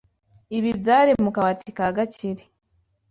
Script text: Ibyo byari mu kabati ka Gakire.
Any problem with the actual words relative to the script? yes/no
yes